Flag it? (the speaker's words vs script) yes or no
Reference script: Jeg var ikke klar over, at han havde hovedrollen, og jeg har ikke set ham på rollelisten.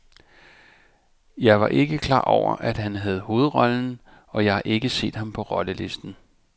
no